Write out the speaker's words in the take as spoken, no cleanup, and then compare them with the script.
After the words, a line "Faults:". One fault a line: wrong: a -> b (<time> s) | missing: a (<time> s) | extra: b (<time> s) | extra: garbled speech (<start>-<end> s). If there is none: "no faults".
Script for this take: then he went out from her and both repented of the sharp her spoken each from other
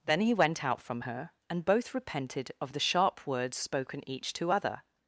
then he went out from her and both repented of the sharp words spoken each to other
Faults:
wrong: her -> words (3.3 s)
wrong: from -> to (4.3 s)